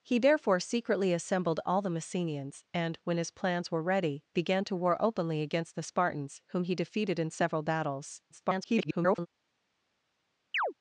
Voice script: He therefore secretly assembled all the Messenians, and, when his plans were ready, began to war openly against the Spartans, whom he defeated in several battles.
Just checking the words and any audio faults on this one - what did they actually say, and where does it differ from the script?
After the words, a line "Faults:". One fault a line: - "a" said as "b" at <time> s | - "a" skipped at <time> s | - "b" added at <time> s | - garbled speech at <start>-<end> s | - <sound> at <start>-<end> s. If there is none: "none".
He therefore secretly assembled all the Messenians, and, when his plans were ready, began to war openly against the Spartans, whom he defeated in several battles. [garbled]
Faults:
- garbled speech at 8.3-9.3 s
- chirp at 10.5-10.7 s